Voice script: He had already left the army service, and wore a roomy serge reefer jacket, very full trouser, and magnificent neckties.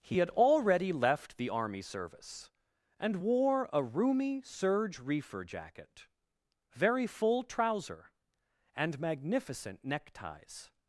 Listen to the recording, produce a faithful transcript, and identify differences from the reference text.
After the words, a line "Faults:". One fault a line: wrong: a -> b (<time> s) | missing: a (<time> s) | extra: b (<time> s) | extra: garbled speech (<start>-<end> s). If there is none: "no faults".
He had already left the army service, and wore a roomy serge reefer jacket, very full trouser, and magnificent neckties.
Faults:
no faults